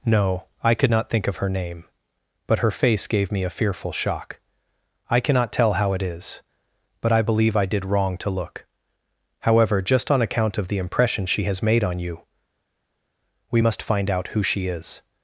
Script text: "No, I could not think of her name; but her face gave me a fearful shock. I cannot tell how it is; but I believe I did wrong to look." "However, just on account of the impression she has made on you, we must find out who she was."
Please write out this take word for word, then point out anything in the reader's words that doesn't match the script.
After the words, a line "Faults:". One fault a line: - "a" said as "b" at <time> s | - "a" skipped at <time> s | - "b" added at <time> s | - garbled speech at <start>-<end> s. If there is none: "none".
"No, I could not think of her name; but her face gave me a fearful shock. I cannot tell how it is; but I believe I did wrong to look." "However, just on account of the impression she has made on you, we must find out who she is."
Faults:
- "was" said as "is" at 14.7 s